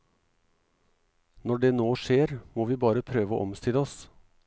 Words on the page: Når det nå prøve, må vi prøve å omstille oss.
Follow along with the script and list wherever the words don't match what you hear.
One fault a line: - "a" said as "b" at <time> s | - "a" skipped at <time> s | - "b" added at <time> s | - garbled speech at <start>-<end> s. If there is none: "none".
- "prøve" said as "skjer" at 2.0 s
- "bare" added at 2.8 s